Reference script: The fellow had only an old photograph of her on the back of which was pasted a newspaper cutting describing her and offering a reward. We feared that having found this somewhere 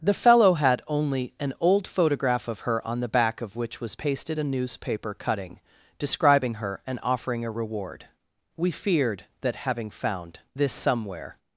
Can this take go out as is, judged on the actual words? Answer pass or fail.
pass